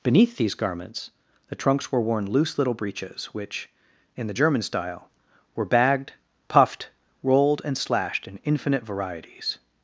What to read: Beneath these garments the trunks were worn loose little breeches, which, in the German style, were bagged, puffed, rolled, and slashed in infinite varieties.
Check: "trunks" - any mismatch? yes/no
no